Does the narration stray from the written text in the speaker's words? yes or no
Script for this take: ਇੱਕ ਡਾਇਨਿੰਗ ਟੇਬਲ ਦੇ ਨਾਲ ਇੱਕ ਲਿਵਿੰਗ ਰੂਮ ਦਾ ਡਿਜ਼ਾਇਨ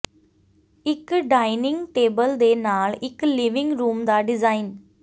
no